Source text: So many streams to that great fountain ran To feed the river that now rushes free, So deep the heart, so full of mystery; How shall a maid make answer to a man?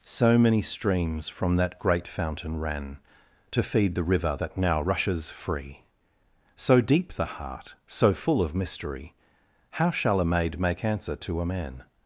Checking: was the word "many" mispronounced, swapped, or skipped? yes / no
no